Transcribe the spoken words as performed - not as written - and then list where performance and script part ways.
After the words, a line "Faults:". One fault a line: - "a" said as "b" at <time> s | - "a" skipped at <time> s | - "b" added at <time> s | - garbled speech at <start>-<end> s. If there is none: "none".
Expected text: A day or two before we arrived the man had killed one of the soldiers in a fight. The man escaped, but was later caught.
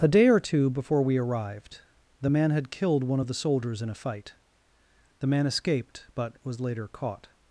A day or two before we arrived the man had killed one of the soldiers in a fight. The man escaped, but was later caught.
Faults:
none